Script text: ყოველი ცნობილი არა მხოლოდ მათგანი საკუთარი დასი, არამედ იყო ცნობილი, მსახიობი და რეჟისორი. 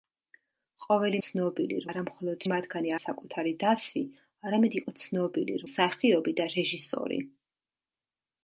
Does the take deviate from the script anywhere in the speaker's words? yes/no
no